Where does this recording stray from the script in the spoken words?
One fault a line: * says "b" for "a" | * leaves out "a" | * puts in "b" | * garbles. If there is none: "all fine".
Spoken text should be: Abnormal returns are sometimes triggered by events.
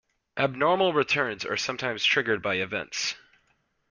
all fine